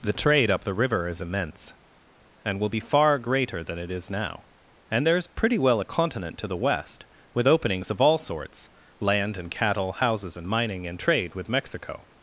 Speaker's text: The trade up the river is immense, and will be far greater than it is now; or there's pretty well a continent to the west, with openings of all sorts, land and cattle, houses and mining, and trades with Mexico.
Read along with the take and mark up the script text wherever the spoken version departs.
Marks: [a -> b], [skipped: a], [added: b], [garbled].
The trade up the river is immense, and will be far greater than it is now; [or -> and] there's pretty well a continent to the west, with openings of all sorts, land and cattle, houses and mining, and [trades -> trade] with Mexico.